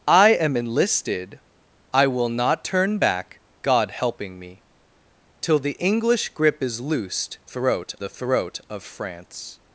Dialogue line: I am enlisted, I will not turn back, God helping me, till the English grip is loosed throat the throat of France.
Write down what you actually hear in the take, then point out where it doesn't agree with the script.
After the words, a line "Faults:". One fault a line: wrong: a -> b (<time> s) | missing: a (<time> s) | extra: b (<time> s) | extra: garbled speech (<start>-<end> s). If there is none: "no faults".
I am enlisted, I will not turn back, God helping me, till the English grip is loosed throat the throat of France.
Faults:
no faults